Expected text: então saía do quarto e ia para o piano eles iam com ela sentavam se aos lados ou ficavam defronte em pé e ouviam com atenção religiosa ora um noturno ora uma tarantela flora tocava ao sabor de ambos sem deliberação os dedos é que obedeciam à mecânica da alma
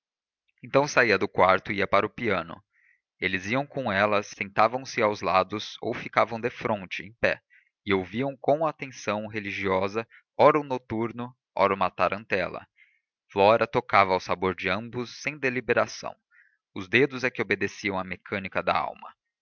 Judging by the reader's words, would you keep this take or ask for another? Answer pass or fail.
pass